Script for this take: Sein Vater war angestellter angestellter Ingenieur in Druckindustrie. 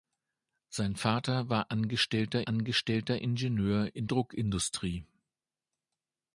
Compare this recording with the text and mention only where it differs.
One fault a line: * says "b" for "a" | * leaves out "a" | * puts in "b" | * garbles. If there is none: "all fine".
all fine